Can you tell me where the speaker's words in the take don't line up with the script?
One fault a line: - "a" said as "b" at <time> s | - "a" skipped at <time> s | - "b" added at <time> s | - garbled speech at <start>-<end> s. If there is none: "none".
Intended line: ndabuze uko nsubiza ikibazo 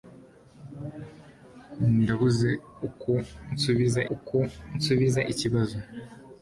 - "uko nsubiza" added at 4.1 s